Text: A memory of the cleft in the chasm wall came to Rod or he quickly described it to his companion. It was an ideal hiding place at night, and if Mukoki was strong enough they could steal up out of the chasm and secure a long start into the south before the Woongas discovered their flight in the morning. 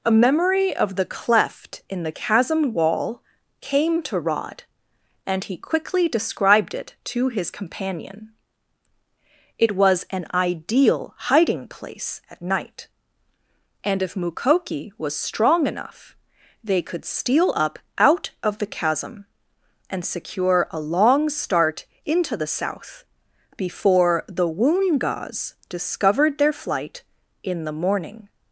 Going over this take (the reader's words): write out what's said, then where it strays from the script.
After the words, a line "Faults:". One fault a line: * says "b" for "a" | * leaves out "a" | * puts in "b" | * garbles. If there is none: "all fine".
A memory of the cleft in the chasm wall came to Rod and he quickly described it to his companion. It was an ideal hiding place at night, and if Mukoki was strong enough they could steal up out of the chasm and secure a long start into the south before the Woongas discovered their flight in the morning.
Faults:
* says "and" for "or"